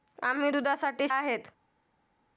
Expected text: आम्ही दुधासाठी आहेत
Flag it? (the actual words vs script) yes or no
no